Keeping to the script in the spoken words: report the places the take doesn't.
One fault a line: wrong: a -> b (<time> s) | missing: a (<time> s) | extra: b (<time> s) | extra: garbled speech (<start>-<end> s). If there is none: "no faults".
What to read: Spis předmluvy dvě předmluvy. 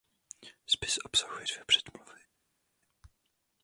wrong: předmluvy -> obsahuje (1.1 s)